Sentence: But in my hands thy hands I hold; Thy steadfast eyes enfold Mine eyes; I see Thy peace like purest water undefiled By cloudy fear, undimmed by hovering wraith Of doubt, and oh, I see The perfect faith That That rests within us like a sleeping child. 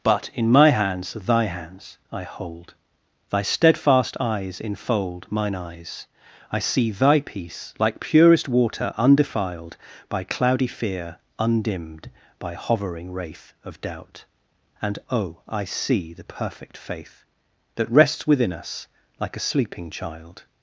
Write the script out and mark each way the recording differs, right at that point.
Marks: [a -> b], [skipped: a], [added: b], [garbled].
But in my hands thy hands I hold; Thy steadfast eyes enfold Mine eyes; I see Thy peace like purest water undefiled By cloudy fear, undimmed by hovering wraith Of doubt, and oh, I see The perfect faith That [skipped: That] rests within us like a sleeping child.